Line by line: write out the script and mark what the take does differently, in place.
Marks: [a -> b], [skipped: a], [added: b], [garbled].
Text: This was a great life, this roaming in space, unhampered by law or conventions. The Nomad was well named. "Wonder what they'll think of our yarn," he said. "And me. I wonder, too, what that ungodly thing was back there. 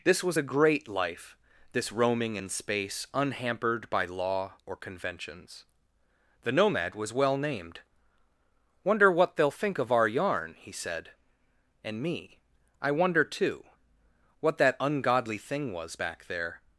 This was a great life, this roaming in space, unhampered by law or conventions. The Nomad was well named. "Wonder what they'll think of our yarn," he said. "And me. I wonder, too, what that ungodly thing was back there.